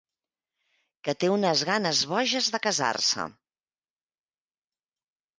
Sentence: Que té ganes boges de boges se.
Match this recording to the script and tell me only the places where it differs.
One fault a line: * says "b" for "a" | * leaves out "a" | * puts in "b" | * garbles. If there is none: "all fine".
* puts in "unes"
* says "casar" for "boges"